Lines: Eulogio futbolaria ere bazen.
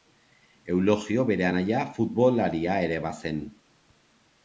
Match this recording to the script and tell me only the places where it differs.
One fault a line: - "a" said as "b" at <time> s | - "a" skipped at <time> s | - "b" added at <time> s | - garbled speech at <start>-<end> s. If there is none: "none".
- "bere anaia" added at 1.3 s